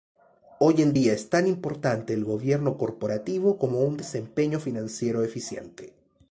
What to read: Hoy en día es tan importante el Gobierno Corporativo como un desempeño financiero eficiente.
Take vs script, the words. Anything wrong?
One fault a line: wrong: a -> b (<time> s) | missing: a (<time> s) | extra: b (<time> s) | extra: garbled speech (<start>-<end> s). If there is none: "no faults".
no faults